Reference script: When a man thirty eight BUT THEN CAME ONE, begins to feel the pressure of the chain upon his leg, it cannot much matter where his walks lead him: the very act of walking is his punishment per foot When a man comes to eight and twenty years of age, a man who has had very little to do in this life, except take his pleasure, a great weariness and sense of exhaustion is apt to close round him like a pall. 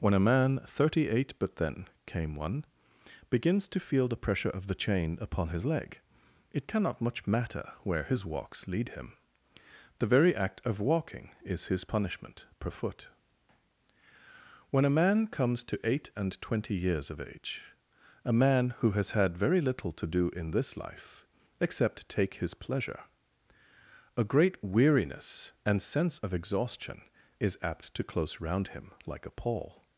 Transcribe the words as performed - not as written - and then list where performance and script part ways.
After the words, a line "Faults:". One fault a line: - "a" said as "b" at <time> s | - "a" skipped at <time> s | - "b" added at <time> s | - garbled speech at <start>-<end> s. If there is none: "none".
When a man thirty eight BUT THEN CAME ONE, begins to feel the pressure of the chain upon his leg, it cannot much matter where his walks lead him: the very act of walking is his punishment per foot When a man comes to eight and twenty years of age, a man who has had very little to do in this life, except take his pleasure, a great weariness and sense of exhaustion is apt to close round him like a pall.
Faults:
none